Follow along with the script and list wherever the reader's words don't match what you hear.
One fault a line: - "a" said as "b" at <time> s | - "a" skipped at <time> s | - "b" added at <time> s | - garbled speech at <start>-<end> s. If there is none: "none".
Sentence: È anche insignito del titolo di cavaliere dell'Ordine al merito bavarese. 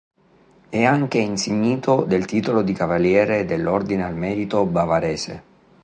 none